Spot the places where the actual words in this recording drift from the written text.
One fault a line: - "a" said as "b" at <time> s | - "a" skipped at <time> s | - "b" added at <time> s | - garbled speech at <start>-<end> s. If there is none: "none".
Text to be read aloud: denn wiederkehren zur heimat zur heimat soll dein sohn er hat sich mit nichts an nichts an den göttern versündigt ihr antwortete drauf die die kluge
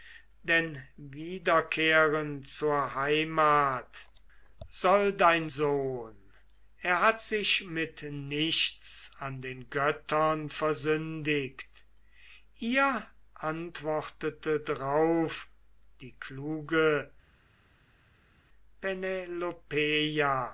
- "zur heimat" skipped at 4.1 s
- "nichts an" skipped at 9.4 s
- "die" skipped at 16.1 s